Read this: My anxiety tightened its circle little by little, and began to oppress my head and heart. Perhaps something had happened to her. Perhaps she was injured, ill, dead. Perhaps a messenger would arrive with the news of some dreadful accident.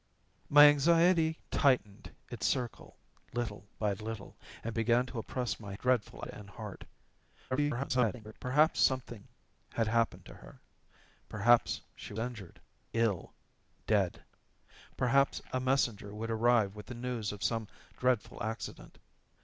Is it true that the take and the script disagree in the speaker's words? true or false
true